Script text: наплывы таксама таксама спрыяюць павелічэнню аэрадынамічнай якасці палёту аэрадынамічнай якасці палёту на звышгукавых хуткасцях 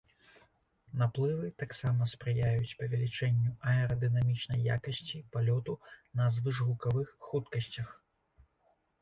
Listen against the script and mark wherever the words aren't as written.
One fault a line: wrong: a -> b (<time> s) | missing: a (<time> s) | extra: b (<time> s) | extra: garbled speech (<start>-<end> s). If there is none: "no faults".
missing: таксама (2.1 s)
missing: аэрадынамічнай якасці палёту (5.8 s)